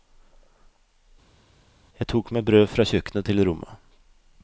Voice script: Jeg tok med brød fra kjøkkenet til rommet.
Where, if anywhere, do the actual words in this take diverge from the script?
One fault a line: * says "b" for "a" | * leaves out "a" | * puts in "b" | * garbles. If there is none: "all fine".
all fine